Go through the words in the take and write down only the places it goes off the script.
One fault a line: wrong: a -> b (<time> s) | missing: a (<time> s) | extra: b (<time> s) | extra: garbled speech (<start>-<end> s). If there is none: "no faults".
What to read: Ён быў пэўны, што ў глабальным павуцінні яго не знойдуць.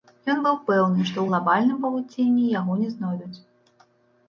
no faults